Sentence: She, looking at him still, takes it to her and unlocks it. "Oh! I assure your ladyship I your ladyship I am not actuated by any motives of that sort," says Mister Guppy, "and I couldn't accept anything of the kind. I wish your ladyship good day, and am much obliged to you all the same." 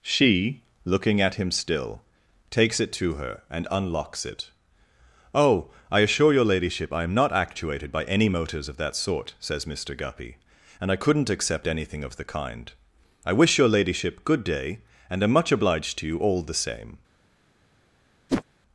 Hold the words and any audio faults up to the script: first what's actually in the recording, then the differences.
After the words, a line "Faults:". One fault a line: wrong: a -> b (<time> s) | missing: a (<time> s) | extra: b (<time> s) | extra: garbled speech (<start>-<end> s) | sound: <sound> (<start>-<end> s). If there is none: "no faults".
She, looking at him still, takes it to her and unlocks it. "Oh! I assure your ladyship I am not actuated by any motives of that sort," says Mister Guppy, "and I couldn't accept anything of the kind. I wish your ladyship good day, and am much obliged to you all the same."
Faults:
missing: your ladyship I (7.0 s)
sound: whoosh (18.3-18.4 s)